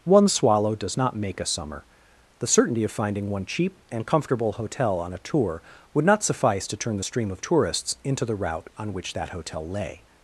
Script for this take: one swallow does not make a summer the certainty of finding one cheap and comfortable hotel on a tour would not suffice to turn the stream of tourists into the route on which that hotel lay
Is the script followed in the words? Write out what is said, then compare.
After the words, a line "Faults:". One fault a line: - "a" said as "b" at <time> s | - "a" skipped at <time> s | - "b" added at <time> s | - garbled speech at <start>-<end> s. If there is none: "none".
one swallow does not make a summer the certainty of finding one cheap and comfortable hotel on a tour would not suffice to turn the stream of tourists into the route on which that hotel lay
Faults:
none